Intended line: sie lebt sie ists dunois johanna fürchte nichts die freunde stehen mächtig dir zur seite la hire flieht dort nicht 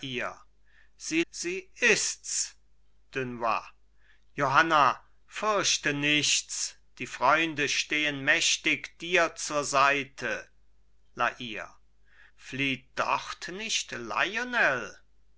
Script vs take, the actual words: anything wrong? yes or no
yes